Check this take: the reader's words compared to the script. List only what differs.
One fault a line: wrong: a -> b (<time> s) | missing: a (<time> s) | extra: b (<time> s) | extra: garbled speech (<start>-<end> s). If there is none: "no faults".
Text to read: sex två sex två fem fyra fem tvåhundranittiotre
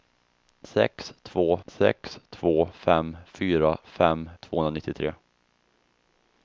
no faults